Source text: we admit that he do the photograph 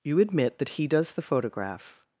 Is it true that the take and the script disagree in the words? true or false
true